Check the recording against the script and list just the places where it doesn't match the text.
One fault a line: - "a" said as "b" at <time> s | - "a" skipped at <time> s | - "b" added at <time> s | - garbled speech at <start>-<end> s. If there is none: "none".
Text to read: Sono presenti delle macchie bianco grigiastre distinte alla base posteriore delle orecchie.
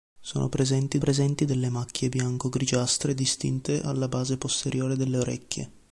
- "presenti" added at 1.0 s